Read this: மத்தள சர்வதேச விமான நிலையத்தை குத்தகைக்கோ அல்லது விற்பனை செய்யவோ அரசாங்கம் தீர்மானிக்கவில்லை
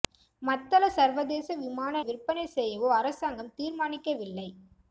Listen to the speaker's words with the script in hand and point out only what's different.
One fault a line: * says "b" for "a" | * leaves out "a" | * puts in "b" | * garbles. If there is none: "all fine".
* leaves out "நிலையத்தை குத்தகைக்கோ அல்லது"